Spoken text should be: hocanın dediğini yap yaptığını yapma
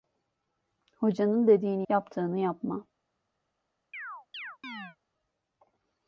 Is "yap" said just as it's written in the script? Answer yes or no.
no